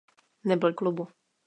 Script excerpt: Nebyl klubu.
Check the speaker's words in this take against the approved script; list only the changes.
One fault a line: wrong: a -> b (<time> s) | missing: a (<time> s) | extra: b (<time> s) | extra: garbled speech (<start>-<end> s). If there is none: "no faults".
no faults